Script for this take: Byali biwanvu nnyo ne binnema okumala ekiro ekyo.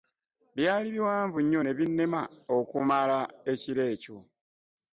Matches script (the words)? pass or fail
pass